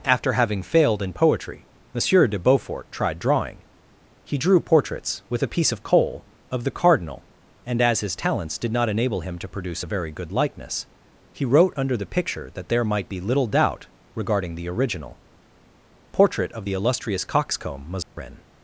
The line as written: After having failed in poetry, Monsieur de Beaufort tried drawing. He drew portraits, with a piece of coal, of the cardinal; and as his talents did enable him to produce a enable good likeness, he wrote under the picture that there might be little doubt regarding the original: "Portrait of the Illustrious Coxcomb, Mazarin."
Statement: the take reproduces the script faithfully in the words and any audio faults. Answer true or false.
false